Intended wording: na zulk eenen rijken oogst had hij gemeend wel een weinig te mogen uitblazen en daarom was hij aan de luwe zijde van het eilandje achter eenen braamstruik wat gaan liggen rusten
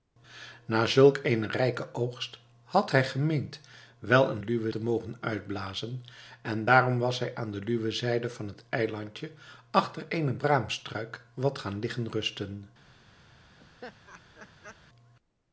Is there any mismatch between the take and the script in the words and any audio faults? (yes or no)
yes